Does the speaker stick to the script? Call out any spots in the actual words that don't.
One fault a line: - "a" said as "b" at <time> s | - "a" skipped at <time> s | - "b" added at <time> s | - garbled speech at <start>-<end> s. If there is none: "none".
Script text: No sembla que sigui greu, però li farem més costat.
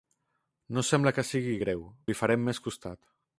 - "però" skipped at 1.8 s